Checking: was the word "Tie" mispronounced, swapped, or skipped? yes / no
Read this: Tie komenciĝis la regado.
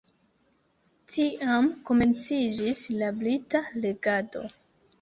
yes